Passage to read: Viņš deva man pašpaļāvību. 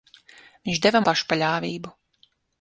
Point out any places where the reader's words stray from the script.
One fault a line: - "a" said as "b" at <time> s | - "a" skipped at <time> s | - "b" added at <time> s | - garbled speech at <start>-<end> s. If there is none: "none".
- "man" skipped at 1.0 s